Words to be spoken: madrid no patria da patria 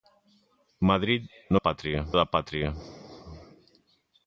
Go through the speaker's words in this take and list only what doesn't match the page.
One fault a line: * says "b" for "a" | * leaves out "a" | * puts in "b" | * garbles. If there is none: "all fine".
all fine